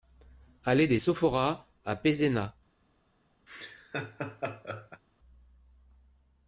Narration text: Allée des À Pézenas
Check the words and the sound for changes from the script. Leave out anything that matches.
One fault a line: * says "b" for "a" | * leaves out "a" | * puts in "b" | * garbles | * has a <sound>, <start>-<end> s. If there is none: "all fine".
* puts in "Sophoras"
* has a laugh, 3.5-5.0 s